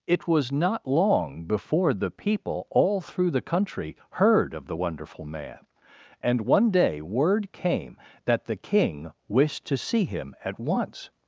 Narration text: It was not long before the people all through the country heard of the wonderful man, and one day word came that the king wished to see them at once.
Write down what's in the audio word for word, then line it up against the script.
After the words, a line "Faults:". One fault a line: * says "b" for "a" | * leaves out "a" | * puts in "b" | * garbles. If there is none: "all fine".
It was not long before the people all through the country heard of the wonderful man, and one day word came that the king wished to see him at once.
Faults:
* says "him" for "them"